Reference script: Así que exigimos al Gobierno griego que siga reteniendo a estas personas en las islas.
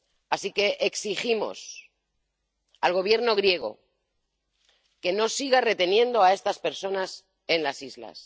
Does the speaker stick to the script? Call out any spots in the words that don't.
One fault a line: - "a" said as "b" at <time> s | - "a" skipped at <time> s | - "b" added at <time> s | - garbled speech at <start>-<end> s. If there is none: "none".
- "no" added at 5.1 s